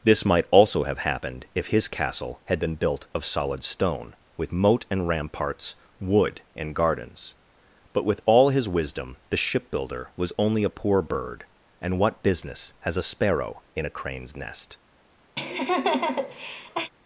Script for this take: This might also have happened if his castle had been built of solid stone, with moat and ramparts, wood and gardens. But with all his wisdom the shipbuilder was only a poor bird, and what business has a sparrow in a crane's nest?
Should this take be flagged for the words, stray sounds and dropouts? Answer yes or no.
yes